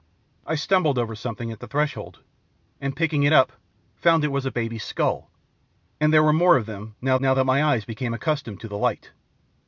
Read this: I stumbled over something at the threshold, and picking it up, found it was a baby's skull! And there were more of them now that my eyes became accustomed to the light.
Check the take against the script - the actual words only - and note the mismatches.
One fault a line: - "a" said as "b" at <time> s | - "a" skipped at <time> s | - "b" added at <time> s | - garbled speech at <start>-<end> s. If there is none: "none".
- "now" added at 7.2 s